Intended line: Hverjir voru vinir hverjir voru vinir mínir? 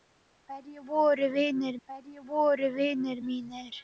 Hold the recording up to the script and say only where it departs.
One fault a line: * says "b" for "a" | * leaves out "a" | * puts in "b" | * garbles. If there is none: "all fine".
all fine